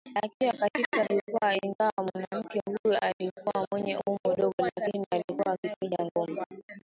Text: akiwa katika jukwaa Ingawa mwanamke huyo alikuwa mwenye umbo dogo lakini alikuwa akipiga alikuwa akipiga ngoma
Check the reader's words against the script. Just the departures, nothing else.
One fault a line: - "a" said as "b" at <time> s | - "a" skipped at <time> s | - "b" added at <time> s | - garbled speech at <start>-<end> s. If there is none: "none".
- "alikuwa akipiga" skipped at 6.0 s